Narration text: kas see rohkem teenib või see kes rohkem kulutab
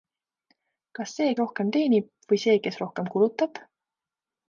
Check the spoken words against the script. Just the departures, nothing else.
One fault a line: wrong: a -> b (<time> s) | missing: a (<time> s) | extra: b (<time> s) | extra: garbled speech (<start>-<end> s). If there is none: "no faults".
no faults